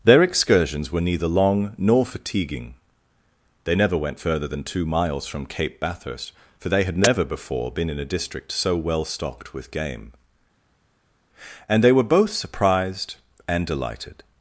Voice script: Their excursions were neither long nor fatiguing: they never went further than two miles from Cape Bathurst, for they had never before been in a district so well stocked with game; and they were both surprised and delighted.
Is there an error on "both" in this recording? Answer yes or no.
no